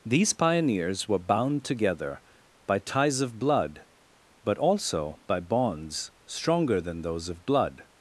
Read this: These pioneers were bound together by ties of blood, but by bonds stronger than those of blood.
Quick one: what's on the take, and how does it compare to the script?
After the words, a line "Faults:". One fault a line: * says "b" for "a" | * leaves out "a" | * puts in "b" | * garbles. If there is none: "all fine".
These pioneers were bound together by ties of blood, but also by bonds stronger than those of blood.
Faults:
* puts in "also"